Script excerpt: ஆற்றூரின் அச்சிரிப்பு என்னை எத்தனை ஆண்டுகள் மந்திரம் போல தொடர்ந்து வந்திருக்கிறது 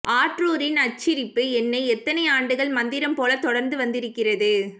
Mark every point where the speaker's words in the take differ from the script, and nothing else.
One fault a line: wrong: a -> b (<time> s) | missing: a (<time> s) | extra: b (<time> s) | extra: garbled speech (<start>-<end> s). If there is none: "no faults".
no faults